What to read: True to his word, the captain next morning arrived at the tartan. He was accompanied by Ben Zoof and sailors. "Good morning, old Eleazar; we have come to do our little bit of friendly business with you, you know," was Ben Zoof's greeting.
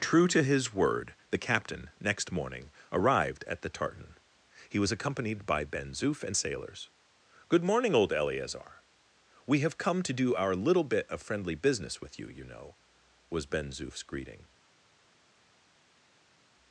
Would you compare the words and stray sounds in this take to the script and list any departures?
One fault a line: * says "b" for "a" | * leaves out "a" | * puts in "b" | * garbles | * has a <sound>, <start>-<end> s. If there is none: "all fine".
all fine